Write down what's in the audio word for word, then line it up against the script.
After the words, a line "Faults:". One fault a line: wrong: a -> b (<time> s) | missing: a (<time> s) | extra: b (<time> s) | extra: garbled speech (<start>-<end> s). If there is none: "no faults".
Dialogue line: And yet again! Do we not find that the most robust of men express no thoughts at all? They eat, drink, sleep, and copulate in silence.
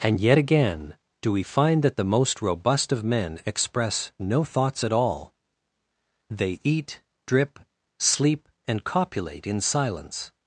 And yet again! Do we find that the most robust of men express no thoughts at all? They eat, drip, sleep, and copulate in silence.
Faults:
missing: not (1.4 s)
wrong: drink -> drip (7.3 s)